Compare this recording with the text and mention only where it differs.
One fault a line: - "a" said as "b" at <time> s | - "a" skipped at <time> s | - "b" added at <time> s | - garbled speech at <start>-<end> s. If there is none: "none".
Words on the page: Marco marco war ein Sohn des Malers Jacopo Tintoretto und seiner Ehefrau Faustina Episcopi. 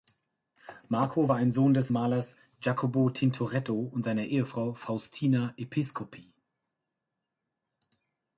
- "marco" skipped at 1.3 s